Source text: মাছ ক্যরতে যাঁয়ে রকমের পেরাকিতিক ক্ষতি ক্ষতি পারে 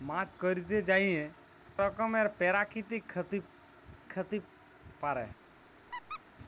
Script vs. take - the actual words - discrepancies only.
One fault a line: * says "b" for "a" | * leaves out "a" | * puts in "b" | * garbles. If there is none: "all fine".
all fine